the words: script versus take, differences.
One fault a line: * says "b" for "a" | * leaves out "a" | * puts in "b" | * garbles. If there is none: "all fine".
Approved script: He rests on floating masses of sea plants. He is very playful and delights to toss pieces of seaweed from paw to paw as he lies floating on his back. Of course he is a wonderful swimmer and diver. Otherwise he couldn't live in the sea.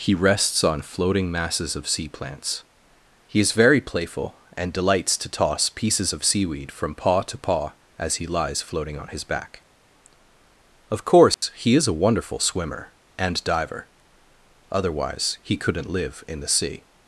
all fine